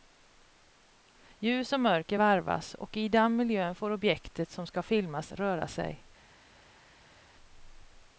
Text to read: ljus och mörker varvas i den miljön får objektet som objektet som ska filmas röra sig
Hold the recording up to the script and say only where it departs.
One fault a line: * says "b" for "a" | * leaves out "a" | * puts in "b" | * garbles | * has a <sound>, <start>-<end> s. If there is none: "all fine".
* puts in "och"
* leaves out "objektet som"